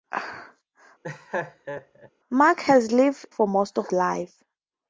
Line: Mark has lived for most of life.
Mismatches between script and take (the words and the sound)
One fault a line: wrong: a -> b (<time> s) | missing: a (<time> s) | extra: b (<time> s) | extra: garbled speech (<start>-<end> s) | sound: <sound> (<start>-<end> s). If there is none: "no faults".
sound: laugh (1.0-2.1 s)